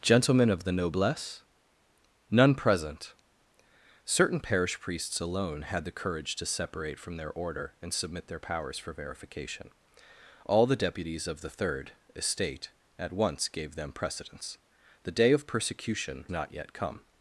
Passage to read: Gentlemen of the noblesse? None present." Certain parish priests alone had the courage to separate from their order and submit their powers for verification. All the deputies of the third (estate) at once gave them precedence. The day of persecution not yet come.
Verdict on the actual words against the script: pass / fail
pass